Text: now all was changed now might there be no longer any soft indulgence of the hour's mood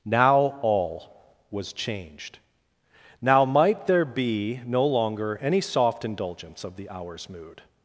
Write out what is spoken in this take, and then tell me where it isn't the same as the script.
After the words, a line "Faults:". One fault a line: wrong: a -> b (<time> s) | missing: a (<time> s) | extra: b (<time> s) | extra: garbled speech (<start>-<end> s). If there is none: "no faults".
now all was changed now might there be no longer any soft indulgence of the hour's mood
Faults:
no faults